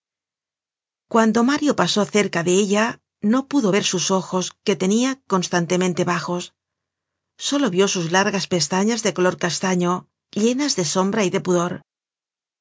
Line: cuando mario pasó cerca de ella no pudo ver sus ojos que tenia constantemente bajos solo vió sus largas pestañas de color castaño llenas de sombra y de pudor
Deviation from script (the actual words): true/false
false